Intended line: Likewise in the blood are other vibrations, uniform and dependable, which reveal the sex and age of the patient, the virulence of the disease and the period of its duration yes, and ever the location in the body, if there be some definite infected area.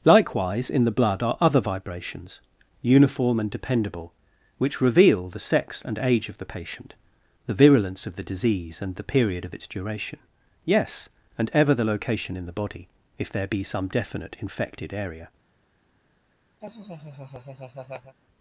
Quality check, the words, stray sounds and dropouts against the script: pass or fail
fail